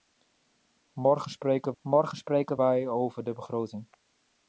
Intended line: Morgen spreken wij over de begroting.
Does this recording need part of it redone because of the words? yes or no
yes